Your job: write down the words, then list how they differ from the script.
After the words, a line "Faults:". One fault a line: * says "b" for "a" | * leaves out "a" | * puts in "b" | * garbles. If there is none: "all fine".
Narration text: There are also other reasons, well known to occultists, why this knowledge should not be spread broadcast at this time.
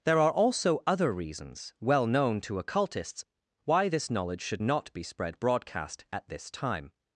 There are also other reasons, well known to occultists, why this knowledge should not be spread broadcast at this time.
Faults:
all fine